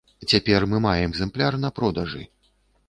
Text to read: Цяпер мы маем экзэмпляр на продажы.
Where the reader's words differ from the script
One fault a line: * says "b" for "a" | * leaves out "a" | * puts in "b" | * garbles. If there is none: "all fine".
all fine